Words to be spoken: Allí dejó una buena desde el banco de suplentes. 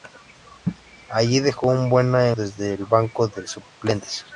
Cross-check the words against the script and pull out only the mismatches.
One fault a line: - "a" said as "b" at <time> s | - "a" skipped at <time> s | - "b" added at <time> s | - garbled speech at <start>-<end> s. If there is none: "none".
none